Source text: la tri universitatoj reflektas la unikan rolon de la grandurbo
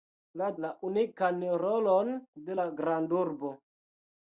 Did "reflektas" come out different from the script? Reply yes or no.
yes